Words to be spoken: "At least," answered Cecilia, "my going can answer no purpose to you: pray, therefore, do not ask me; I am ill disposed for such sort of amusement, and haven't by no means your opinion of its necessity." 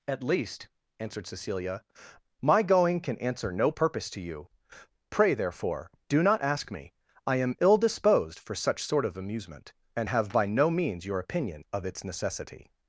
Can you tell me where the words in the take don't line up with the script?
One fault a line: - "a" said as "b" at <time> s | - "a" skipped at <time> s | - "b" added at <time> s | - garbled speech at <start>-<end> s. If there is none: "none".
- "haven't" said as "have" at 10.1 s